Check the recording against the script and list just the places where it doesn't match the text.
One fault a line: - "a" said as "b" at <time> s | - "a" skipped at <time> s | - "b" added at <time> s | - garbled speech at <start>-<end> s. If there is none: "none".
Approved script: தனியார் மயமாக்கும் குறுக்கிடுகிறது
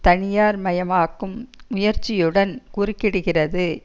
- "முயற்சியுடன்" added at 1.7 s